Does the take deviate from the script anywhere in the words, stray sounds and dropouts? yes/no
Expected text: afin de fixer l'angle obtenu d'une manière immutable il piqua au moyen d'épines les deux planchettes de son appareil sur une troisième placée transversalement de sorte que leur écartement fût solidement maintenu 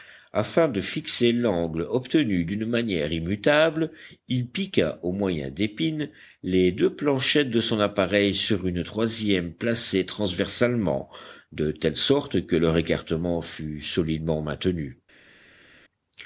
yes